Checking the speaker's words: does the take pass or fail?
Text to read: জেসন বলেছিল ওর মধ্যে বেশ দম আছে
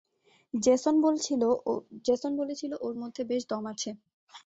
pass